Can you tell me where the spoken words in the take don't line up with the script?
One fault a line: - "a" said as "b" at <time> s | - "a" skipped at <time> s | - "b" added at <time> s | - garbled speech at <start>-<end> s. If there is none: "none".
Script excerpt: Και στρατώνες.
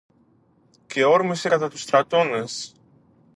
- "όρμησε κατά τους" added at 1.0 s